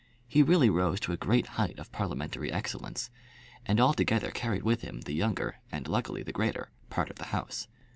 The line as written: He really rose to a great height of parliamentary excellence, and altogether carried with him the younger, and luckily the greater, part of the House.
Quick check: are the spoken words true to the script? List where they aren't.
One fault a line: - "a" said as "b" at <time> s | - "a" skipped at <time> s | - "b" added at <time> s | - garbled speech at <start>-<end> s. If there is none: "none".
none